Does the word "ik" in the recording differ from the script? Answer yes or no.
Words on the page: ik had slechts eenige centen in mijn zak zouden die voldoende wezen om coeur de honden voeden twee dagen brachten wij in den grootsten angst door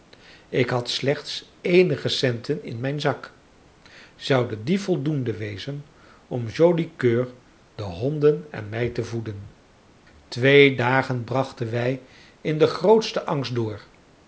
no